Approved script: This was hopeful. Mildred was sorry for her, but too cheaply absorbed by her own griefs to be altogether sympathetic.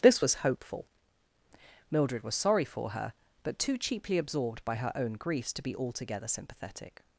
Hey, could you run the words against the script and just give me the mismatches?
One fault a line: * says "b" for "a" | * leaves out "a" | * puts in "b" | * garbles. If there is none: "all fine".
all fine